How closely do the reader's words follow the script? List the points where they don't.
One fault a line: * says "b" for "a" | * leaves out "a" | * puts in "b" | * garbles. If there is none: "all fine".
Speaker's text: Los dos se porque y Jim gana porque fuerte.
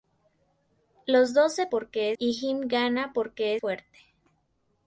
all fine